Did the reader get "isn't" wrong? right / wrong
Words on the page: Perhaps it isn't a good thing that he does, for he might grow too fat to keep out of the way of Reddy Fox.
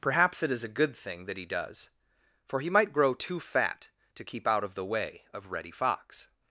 wrong